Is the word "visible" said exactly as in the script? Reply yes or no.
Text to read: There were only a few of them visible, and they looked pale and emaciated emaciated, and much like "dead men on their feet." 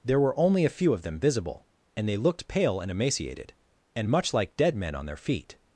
yes